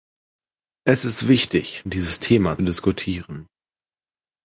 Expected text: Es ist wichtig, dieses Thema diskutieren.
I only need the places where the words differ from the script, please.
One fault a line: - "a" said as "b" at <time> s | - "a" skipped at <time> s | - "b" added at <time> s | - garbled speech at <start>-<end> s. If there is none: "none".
none